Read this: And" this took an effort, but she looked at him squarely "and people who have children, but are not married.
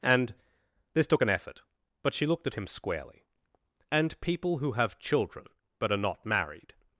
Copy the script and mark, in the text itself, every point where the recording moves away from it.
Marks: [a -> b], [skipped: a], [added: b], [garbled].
And" this took an effort, but she looked at him squarely "and people who have children, but are not married.